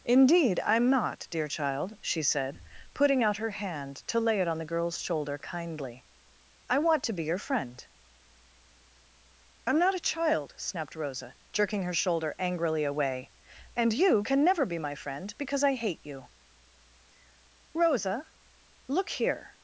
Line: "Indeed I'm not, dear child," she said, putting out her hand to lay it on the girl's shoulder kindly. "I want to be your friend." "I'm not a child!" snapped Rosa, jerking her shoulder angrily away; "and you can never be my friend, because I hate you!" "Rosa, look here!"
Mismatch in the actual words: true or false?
false